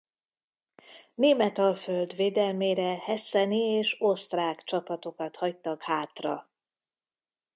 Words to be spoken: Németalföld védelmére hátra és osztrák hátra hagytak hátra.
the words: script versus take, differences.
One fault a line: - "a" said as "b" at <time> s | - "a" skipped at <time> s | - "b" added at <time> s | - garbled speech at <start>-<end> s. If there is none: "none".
- "hátra" said as "hesseni" at 3.0 s
- "hátra" said as "csapatokat" at 4.6 s